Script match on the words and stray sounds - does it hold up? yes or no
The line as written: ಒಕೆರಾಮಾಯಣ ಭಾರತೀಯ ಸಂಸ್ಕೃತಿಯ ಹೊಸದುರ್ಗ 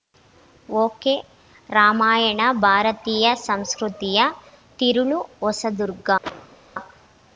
no